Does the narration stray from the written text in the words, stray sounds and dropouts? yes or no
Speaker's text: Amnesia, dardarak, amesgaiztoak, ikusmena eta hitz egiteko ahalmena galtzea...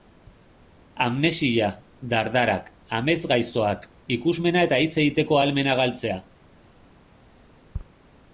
no